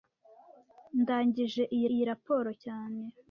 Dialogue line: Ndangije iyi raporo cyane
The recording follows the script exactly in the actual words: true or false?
false